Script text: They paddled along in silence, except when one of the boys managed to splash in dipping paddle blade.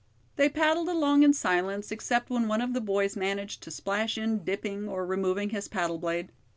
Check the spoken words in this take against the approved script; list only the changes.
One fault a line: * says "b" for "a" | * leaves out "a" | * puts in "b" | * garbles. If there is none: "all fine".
* puts in "or removing his"